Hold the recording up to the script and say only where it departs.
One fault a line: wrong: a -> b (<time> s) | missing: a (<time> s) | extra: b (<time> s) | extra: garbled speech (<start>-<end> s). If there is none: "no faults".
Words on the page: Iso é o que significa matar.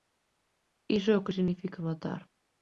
no faults